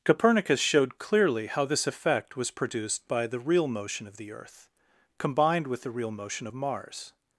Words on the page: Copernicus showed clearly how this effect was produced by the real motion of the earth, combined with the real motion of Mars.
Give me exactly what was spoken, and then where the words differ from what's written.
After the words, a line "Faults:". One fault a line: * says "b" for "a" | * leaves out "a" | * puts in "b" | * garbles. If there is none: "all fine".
Copernicus showed clearly how this effect was produced by the real motion of the earth, combined with the real motion of Mars.
Faults:
all fine